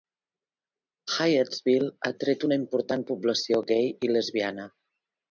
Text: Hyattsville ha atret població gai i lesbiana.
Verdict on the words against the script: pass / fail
fail